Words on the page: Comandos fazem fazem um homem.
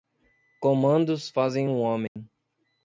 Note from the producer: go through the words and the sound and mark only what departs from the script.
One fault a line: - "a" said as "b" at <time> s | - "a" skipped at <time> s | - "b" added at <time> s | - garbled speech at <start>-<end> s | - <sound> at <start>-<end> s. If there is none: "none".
- "fazem" skipped at 1.7 s
- dropout at 2.1-2.2 s